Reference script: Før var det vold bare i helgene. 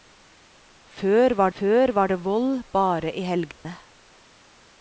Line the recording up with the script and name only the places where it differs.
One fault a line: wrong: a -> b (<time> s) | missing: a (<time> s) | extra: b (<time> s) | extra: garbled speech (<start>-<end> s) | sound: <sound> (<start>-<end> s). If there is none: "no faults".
extra: før var (1.6 s)
sound: dropout (3.5-3.6 s)